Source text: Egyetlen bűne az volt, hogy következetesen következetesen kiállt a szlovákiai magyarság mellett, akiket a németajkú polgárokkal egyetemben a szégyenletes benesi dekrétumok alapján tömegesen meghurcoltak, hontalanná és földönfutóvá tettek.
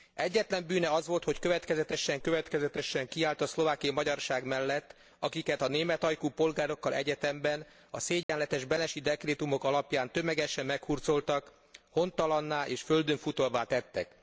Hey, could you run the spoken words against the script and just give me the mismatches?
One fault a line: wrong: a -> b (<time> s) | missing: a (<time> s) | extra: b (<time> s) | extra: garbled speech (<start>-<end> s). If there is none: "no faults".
no faults